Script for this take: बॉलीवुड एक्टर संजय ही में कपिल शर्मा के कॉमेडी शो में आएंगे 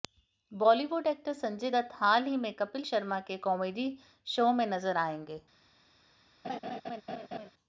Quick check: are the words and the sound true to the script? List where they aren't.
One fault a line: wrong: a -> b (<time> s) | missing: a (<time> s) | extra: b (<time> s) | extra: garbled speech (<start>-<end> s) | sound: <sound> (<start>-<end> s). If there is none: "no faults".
extra: दत्त हाल (1.7 s)
extra: नजर (4.7 s)
sound: laugh (6.4-7.5 s)